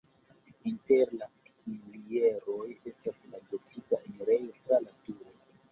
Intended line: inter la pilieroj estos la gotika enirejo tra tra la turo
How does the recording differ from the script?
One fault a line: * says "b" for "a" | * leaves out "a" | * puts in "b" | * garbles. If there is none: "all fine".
* says "estas" for "estos"
* leaves out "tra"